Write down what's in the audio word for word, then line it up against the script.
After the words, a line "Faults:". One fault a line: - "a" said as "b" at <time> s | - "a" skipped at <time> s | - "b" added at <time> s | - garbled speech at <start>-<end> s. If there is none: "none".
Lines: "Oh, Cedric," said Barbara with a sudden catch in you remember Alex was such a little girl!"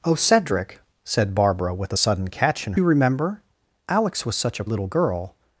"Oh, Cedric," said Barbara with a sudden catch in you remember Alex was such a little girl!"
Faults:
none